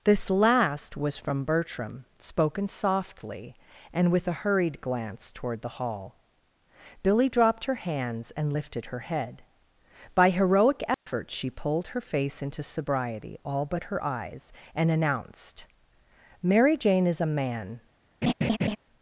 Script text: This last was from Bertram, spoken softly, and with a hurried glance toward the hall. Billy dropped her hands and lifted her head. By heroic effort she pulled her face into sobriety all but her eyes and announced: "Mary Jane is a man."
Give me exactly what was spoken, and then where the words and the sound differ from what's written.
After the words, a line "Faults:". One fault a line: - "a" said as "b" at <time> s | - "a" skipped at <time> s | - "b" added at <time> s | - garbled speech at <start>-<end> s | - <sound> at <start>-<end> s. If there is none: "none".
This last was from Bertram, spoken softly, and with a hurried glance toward the hall. Billy dropped her hands and lifted her head. By heroic effort she pulled her face into sobriety all but her eyes and announced: "Mary Jane is a man."
Faults:
- dropout at 10.9-11.1 s
- laugh at 18.2-18.8 s